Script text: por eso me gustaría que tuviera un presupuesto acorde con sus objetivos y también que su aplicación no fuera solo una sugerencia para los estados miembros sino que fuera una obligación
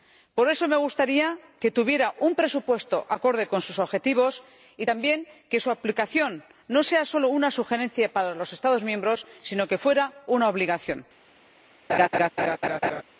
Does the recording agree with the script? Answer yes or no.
yes